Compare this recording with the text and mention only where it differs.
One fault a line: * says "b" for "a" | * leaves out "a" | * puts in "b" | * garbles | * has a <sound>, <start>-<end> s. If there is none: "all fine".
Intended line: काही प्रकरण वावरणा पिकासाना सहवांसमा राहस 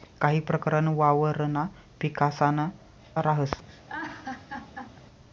* leaves out "सहवांसमा"
* has a laugh, 3.7-5.0 s